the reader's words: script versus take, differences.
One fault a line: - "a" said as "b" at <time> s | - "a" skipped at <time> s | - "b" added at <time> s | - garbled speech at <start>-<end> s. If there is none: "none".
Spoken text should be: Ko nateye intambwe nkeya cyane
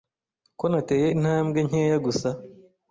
- "cyane" said as "gusa" at 2.0 s